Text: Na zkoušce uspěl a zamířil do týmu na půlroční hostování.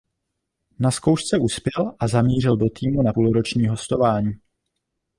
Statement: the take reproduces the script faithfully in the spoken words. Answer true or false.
true